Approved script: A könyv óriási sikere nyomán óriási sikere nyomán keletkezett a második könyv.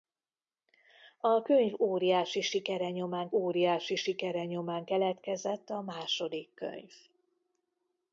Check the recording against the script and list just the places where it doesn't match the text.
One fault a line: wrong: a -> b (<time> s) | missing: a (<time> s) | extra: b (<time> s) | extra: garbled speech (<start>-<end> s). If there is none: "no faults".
no faults